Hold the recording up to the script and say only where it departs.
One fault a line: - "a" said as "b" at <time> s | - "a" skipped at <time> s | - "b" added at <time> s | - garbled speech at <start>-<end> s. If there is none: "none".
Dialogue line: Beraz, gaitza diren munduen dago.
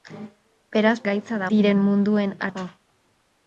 none